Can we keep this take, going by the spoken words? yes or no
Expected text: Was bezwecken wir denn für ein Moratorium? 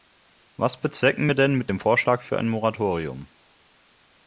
no